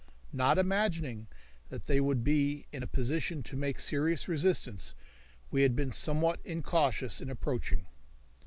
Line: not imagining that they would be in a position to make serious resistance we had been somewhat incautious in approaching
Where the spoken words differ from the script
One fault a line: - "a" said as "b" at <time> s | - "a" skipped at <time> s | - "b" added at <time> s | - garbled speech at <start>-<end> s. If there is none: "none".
none